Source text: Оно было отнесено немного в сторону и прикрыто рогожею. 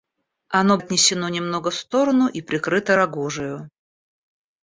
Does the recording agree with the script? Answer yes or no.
no